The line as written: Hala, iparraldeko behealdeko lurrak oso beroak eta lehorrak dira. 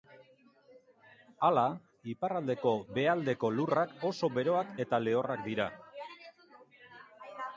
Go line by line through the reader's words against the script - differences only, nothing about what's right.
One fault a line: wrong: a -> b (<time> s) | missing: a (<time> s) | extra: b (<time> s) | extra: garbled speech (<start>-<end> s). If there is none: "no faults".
no faults